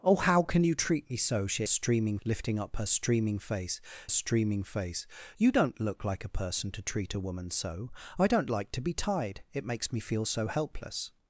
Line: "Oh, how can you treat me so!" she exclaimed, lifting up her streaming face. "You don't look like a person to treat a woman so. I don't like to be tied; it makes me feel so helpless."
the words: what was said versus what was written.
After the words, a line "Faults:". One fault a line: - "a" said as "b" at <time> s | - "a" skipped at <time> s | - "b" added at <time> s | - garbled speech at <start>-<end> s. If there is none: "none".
"Oh, how can you treat me so!" she streaming, lifting up her streaming face streaming face. "You don't look like a person to treat a woman so. I don't like to be tied; it makes me feel so helpless."
Faults:
- "exclaimed" said as "streaming" at 1.7 s
- "streaming face" added at 4.1 s